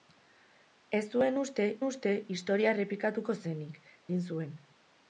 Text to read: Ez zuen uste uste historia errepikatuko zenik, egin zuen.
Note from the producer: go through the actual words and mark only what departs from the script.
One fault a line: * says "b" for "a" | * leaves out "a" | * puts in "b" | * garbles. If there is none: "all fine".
all fine